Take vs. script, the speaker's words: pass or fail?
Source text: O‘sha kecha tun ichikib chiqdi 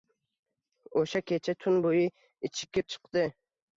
fail